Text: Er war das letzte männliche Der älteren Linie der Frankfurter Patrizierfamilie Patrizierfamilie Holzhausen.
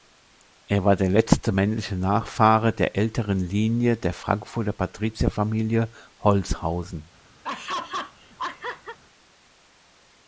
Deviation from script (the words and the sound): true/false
true